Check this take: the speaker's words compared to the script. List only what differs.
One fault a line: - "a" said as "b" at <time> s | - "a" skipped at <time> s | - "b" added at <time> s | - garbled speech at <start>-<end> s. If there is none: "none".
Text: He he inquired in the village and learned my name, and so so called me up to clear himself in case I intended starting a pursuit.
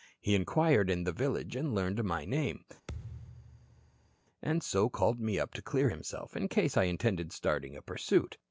- "he" skipped at 0.3 s
- "so" skipped at 4.9 s